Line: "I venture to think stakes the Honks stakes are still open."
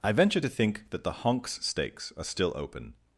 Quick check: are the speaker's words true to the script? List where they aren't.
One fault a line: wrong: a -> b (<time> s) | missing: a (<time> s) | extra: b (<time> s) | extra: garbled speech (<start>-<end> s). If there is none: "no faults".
wrong: stakes -> that (0.9 s)